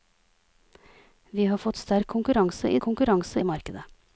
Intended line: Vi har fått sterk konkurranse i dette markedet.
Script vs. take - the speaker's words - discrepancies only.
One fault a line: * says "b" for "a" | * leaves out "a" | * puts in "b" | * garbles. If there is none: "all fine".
* says "konkurranse" for "dette"